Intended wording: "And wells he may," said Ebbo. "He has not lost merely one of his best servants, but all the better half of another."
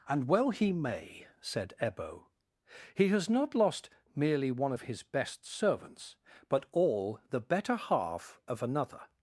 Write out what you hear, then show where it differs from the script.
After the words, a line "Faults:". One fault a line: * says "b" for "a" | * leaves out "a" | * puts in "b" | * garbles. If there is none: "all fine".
"And well he may," said Ebbo. "He has not lost merely one of his best servants, but all the better half of another."
Faults:
* says "well" for "wells"